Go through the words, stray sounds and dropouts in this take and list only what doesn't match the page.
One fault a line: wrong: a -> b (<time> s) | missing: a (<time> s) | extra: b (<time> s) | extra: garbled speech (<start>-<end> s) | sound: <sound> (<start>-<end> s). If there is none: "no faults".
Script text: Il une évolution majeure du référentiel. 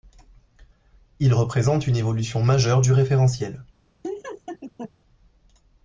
extra: représente (1.4 s)
sound: laugh (4.0-4.9 s)